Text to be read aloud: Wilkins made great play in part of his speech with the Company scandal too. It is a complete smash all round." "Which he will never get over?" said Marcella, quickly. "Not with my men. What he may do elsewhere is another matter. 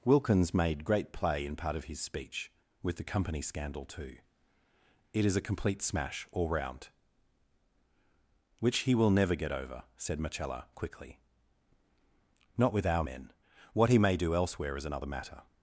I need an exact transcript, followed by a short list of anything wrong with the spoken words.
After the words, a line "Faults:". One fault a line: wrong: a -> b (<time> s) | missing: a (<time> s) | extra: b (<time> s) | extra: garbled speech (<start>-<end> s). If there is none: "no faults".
Wilkins made great play in part of his speech with the Company scandal too. It is a complete smash all round." "Which he will never get over?" said Marcella, quickly. "Not with our men. What he may do elsewhere is another matter.
Faults:
wrong: my -> our (12.8 s)